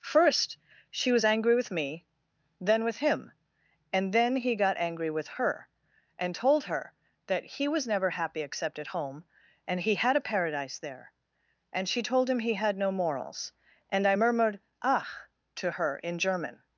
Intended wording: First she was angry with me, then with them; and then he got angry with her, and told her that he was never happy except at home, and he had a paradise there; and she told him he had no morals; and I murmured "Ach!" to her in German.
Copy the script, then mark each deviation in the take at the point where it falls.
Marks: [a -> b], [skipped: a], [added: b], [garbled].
First she was angry with me, then with [them; -> him] and then he got angry with her, and told her that he was never happy except at home, and he had a paradise there; and she told him he had no morals; and I murmured "Ach!" to her in German.